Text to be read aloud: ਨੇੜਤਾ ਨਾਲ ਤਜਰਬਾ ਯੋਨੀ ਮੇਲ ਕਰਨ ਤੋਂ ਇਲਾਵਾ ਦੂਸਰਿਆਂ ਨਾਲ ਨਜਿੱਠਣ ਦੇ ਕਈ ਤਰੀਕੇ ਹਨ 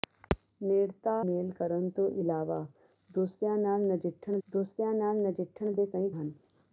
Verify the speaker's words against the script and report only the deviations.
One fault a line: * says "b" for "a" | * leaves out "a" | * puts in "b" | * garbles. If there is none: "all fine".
* leaves out "ਨਾਲ ਤਜਰਬਾ ਯੋਨੀ"
* puts in "ਦੂਸਰਿਆਂ ਨਾਲ ਨਜਿੱਠਣ"
* leaves out "ਤਰੀਕੇ"